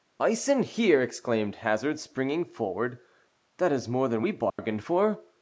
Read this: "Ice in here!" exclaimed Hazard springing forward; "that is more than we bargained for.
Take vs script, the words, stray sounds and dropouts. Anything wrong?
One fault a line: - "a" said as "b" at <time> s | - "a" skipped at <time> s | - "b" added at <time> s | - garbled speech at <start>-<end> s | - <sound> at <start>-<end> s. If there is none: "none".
- dropout at 4.5-4.6 s